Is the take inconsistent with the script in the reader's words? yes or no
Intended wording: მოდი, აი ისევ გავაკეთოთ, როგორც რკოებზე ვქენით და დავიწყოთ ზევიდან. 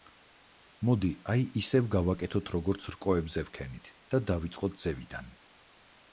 no